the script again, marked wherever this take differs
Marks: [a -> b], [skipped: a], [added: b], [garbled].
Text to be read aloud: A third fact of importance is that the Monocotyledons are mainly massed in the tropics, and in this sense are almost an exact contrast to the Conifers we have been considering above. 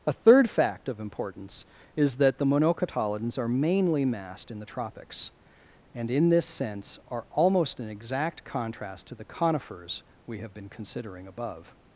A third fact of importance is that the Monocotyledons are mainly massed in the tropics, and in this sense are almost an exact contrast to the Conifers we have been considering above.